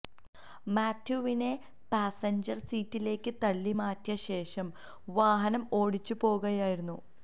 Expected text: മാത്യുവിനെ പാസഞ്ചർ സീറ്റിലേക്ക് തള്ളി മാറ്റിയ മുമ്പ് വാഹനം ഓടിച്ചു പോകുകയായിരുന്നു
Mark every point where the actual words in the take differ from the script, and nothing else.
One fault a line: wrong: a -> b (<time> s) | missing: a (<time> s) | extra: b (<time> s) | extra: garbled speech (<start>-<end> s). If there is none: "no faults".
wrong: മുമ്പ് -> ശേഷം (4.3 s)